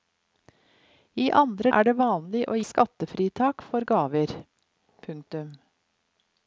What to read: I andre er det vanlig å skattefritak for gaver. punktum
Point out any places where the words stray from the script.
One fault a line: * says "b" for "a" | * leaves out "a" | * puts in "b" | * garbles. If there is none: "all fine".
all fine